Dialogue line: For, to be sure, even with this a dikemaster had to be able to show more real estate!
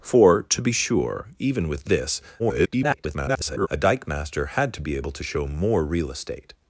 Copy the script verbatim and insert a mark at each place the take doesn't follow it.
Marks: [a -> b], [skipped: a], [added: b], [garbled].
For, to be sure, even with this [garbled] a dikemaster had to be able to show more real estate!